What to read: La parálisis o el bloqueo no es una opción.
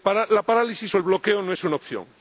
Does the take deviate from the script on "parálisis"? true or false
false